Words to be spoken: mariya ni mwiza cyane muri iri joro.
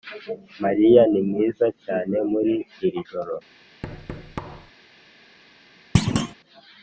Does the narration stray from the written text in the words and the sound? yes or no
yes